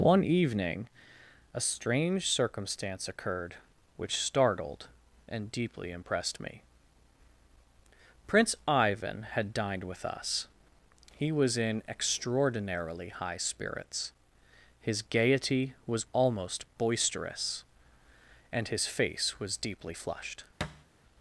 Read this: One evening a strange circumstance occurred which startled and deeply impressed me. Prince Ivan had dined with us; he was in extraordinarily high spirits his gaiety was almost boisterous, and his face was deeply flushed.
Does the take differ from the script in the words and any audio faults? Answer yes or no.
yes